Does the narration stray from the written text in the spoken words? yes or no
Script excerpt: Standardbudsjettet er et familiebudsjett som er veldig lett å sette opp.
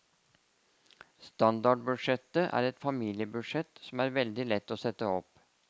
no